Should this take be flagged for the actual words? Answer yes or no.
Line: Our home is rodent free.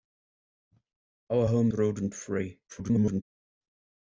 yes